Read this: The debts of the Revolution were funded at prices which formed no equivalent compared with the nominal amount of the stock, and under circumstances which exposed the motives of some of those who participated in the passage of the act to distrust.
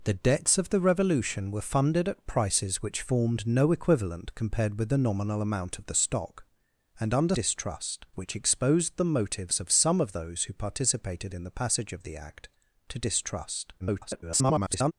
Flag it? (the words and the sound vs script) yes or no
yes